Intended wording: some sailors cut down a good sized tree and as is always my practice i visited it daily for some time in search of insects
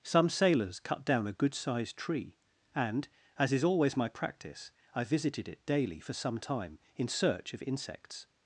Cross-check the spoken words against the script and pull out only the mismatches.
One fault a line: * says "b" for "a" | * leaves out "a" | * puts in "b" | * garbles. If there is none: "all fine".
all fine